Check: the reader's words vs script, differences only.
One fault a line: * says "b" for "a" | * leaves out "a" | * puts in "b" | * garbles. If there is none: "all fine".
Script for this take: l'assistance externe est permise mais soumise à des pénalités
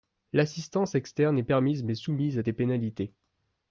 all fine